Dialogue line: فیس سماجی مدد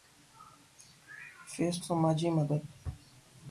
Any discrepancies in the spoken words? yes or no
no